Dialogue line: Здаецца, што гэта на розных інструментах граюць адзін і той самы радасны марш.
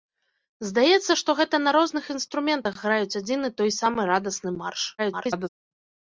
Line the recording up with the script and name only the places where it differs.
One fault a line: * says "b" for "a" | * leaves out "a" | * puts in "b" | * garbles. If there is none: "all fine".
* garbles